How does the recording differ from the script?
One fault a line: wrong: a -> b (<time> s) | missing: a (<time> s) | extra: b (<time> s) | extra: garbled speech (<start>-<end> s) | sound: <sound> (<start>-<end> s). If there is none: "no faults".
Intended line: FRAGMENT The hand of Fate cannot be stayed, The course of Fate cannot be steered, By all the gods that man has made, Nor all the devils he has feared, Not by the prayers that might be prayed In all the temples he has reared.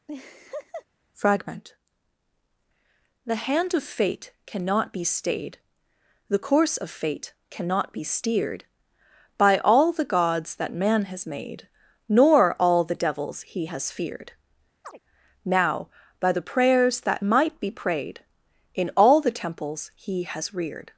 sound: laugh (0.1-0.9 s)
sound: chirp (14.8-15.0 s)
wrong: Not -> Now (15.4 s)